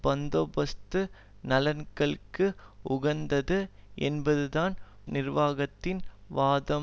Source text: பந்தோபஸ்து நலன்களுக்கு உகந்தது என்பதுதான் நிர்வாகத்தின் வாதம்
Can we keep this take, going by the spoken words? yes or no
yes